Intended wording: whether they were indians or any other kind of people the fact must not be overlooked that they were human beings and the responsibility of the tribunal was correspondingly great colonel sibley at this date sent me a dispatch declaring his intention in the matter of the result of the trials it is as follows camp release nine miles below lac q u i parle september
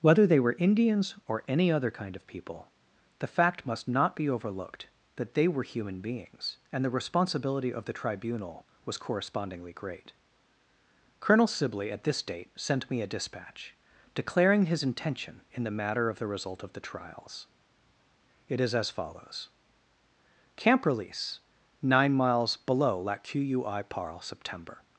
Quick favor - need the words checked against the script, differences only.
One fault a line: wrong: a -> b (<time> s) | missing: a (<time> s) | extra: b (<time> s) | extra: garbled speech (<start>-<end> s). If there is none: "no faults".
no faults